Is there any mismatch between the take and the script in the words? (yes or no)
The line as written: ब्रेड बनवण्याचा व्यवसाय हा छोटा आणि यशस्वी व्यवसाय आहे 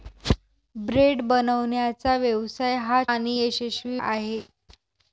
yes